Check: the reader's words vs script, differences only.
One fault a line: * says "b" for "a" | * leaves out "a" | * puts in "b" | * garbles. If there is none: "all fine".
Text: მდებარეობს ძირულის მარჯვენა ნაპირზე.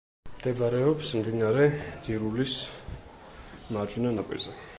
* puts in "მდინარე"